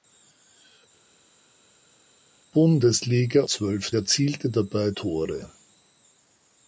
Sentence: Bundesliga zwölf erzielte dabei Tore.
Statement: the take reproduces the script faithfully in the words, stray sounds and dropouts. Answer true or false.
true